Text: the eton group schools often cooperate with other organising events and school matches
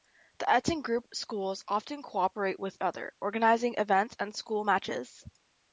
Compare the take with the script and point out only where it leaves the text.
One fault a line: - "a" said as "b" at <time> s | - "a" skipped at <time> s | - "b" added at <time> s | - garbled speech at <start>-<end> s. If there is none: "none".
none